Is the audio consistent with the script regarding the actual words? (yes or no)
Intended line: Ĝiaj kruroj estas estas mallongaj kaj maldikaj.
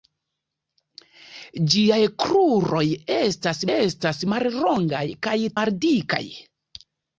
yes